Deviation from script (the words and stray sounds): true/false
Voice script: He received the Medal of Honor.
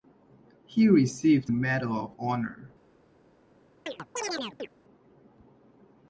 true